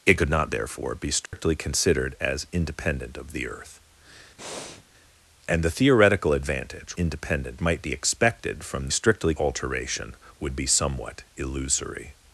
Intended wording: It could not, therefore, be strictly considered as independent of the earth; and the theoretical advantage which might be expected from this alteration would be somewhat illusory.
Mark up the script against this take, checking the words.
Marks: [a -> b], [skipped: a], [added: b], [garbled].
It could not, therefore, be strictly considered as independent of the earth; and the theoretical advantage [which -> independent] might be expected from [this -> strictly] alteration would be somewhat illusory.